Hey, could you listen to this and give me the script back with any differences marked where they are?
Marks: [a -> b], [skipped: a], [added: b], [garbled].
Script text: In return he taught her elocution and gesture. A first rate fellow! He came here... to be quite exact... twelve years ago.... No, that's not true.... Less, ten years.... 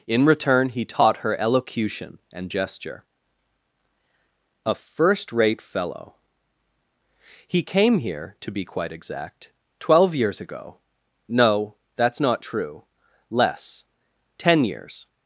In return he taught her elocution and gesture. A first rate fellow! He came here... to be quite exact... twelve years ago.... No, that's not true.... Less, ten years....